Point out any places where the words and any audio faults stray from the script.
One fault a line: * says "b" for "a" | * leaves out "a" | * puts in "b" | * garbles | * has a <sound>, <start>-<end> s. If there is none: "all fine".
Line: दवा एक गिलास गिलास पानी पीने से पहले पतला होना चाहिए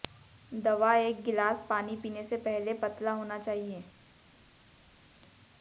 * leaves out "गिलास"